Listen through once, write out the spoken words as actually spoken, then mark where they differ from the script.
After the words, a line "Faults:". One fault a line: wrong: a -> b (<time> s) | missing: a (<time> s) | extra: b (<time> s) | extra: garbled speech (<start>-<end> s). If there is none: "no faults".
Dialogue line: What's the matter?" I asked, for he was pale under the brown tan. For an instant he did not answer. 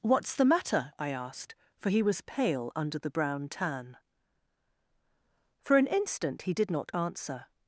What's the matter?" I asked, for he was pale under the brown tan. For an instant he did not answer.
Faults:
no faults